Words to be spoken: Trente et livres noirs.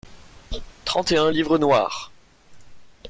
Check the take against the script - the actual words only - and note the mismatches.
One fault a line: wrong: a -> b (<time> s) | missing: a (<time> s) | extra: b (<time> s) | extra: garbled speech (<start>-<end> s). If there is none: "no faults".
extra: un (1.2 s)